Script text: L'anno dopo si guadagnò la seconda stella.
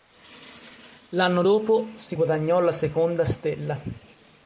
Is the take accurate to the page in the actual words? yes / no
yes